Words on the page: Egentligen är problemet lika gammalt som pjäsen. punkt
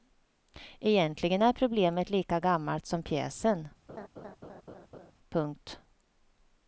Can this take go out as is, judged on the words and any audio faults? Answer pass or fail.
fail